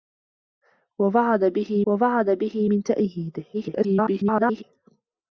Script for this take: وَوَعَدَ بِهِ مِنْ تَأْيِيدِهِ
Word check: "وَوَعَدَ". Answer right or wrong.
right